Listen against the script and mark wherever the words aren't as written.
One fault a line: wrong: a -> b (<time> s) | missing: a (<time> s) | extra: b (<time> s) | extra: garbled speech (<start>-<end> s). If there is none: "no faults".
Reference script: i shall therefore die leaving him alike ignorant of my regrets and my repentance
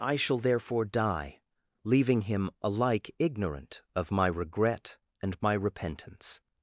wrong: regrets -> regret (4.3 s)